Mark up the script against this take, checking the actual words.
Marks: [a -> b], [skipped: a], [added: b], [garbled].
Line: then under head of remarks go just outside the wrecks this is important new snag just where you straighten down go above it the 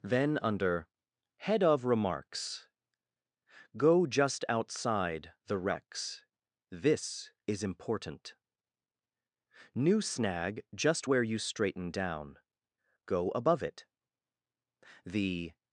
then under head of remarks go just outside the wrecks this is important new snag just where you straighten down go above it the